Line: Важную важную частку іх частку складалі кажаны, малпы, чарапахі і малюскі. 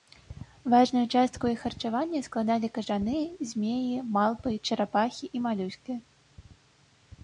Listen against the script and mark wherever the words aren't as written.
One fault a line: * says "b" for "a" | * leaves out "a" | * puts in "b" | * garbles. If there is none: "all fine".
* leaves out "важную"
* says "харчавання" for "частку"
* puts in "змеі"